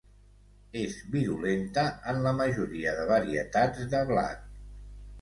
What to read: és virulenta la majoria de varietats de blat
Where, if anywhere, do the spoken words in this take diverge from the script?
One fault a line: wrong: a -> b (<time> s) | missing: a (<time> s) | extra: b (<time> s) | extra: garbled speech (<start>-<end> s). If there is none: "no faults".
extra: en (2.1 s)